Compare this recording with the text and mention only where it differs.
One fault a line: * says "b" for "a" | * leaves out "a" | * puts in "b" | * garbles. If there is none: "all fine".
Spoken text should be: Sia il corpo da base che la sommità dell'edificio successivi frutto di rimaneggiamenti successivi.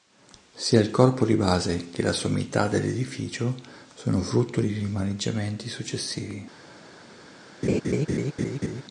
* says "di" for "da"
* says "sono" for "successivi"